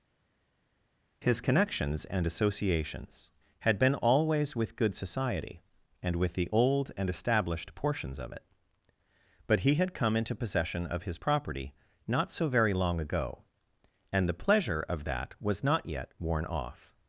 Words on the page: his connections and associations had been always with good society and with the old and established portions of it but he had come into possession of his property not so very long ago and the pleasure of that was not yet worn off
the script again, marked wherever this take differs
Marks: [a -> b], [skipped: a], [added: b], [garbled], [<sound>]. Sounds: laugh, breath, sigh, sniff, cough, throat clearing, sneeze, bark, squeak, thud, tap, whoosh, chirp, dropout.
his connections and associations had been always with good society and with the old and established portions of it but he had come into possession of his property not so very long ago and the pleasure of that was not yet worn off